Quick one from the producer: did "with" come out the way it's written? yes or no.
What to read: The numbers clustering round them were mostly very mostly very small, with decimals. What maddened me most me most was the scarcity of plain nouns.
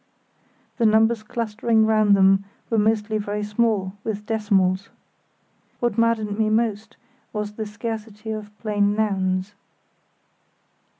yes